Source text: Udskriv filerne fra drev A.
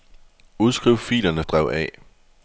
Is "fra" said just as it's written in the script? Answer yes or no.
no